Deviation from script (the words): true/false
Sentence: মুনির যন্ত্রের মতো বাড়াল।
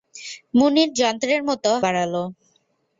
false